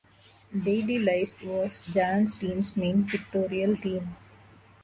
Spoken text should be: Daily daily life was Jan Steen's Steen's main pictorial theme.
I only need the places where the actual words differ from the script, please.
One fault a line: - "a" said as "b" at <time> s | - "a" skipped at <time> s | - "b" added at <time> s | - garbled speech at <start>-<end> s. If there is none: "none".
- "daily" skipped at 1.0 s
- "Steen's" skipped at 2.8 s